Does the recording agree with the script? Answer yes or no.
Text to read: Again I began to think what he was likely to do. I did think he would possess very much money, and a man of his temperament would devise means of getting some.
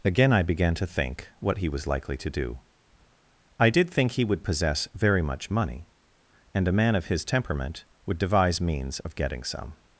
yes